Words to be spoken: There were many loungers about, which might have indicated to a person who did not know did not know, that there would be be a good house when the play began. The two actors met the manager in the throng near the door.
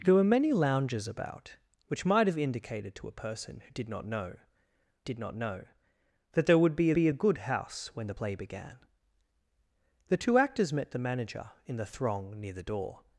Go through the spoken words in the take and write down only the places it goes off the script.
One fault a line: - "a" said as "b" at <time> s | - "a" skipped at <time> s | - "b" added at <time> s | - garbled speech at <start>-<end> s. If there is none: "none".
none